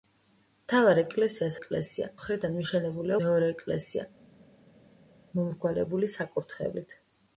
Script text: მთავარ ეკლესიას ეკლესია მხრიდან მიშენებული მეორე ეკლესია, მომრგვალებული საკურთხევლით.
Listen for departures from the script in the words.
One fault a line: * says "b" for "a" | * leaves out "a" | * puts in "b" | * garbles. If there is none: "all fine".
all fine